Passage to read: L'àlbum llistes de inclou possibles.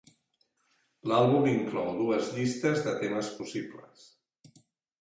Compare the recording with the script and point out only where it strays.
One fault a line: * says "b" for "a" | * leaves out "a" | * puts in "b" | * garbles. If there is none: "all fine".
* puts in "inclou dues"
* says "temes" for "inclou"